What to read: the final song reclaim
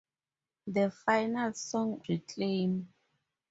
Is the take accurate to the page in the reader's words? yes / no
yes